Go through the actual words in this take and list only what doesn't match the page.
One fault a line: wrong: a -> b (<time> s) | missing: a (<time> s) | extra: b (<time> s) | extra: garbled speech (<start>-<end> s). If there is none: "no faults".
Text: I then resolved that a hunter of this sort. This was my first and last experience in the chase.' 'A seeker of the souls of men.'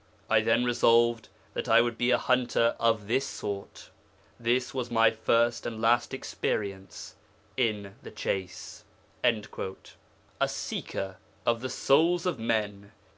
extra: I would be (1.7 s)